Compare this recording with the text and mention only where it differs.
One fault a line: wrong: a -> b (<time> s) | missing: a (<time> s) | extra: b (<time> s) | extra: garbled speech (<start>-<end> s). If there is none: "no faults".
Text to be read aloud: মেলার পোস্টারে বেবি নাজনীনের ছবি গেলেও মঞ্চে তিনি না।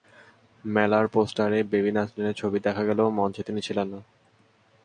extra: দেখা (2.6 s)
extra: ছিলেন (3.6 s)